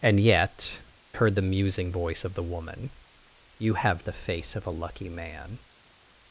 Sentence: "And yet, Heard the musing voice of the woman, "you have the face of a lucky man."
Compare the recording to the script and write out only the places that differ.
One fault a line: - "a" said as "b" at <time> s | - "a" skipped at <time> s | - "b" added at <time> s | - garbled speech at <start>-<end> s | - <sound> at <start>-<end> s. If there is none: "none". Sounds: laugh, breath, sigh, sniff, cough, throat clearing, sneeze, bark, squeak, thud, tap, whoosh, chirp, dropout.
none